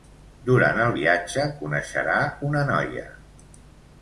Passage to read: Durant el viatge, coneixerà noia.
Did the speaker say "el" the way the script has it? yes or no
yes